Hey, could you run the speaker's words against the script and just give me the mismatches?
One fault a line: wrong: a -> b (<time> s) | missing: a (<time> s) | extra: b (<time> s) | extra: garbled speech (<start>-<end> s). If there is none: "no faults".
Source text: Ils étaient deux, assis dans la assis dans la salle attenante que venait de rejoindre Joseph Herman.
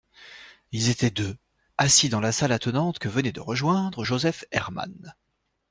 missing: assis dans la (2.3 s)